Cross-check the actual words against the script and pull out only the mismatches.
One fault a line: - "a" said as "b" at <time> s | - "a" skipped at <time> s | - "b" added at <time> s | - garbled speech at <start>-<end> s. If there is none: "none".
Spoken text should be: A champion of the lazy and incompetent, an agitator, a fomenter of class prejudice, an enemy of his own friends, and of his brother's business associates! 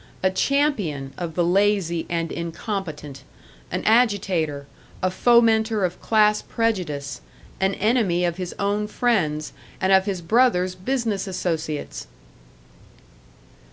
none